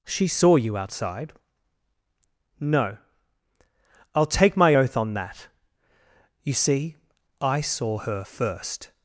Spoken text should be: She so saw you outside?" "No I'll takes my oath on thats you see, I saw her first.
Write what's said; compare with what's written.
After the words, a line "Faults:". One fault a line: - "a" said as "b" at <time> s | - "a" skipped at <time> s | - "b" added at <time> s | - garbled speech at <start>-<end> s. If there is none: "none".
She saw you outside?" "No I'll take my oath on that you see, I saw her first.
Faults:
- "so" skipped at 0.3 s
- "takes" said as "take" at 4.2 s
- "thats" said as "that" at 5.1 s